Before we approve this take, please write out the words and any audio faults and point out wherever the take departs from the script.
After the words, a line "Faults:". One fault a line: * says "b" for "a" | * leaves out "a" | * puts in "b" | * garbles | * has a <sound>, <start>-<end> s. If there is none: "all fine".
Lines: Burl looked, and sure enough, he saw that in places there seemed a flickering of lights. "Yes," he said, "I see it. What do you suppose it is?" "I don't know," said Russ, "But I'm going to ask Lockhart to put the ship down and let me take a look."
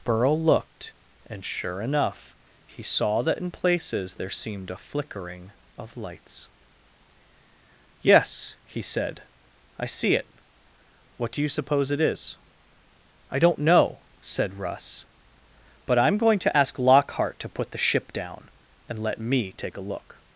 Burl looked, and sure enough, he saw that in places there seemed a flickering of lights. "Yes," he said, "I see it. What do you suppose it is?" "I don't know," said Russ, "But I'm going to ask Lockhart to put the ship down and let me take a look."
Faults:
all fine